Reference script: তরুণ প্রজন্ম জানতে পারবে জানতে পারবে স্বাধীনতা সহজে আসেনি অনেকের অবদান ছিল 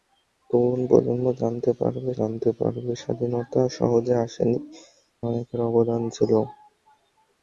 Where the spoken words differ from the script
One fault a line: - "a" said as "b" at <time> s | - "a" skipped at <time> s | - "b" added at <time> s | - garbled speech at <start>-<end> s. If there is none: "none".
none